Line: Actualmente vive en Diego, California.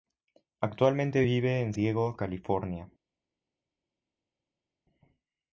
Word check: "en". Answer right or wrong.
right